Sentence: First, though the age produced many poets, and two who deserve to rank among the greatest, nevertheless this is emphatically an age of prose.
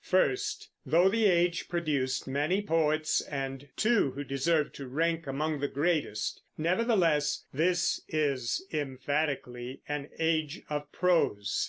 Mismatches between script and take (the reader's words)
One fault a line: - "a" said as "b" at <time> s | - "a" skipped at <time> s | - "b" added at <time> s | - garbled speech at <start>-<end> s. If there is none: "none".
none